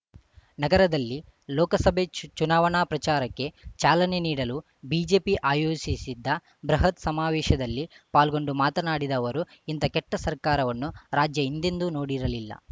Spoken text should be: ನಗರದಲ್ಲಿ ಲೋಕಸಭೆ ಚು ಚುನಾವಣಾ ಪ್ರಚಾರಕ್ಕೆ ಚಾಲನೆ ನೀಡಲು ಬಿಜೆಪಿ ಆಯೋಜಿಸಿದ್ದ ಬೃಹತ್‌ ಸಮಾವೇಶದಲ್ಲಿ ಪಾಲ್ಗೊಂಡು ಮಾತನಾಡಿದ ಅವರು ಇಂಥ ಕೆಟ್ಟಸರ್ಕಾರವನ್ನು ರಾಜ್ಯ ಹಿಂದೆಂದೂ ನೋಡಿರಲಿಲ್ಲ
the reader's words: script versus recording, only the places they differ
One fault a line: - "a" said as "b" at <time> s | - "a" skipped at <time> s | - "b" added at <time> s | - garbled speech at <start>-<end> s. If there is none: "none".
none